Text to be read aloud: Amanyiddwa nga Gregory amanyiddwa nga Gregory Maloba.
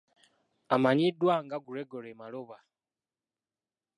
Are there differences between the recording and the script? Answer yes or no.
yes